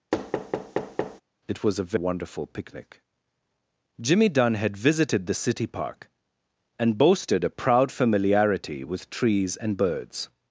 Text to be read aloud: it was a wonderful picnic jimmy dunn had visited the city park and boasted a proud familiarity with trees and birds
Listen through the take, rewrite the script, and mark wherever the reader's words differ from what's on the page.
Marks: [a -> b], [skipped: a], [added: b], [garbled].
it was a wonderful picnic jimmy dunn had visited the city park and boasted a proud familiarity with trees and birds